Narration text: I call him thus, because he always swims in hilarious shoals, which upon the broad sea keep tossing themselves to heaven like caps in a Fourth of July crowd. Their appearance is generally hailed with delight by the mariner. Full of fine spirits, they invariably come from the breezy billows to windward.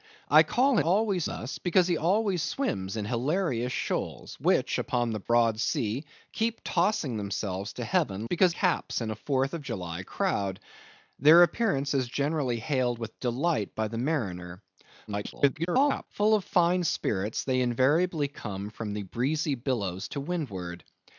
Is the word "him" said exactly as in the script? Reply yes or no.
no